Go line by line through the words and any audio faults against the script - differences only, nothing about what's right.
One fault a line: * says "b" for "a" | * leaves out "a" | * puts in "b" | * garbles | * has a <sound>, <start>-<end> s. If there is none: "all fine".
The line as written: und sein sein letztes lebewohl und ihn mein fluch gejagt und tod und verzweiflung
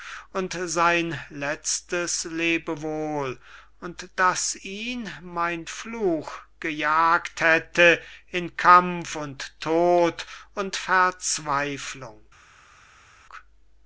* leaves out "sein"
* puts in "daß"
* puts in "hätte in kampf"